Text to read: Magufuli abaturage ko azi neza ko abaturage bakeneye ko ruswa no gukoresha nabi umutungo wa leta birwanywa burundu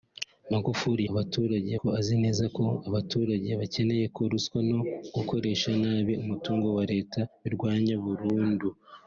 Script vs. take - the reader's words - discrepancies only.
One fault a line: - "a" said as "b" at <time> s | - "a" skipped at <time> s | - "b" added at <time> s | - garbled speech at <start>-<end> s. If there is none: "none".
none